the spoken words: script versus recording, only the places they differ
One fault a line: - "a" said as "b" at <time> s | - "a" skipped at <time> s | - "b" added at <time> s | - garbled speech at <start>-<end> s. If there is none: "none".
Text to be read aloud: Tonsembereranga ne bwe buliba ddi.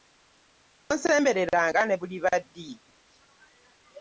- "bwe" skipped at 1.9 s